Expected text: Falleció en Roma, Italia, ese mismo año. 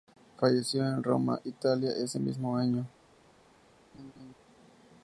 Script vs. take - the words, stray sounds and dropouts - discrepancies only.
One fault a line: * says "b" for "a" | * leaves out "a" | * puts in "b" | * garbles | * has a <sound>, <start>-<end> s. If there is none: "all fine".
* has a laugh, 3.9-4.3 s